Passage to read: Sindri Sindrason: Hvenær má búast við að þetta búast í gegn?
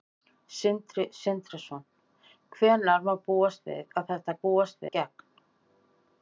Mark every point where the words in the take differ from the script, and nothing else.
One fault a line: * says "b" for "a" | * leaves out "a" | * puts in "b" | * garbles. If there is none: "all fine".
all fine